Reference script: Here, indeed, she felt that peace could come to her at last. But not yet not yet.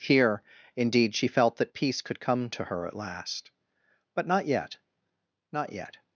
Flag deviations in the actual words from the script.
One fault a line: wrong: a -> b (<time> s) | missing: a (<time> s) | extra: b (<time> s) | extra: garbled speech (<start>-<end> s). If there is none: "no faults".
no faults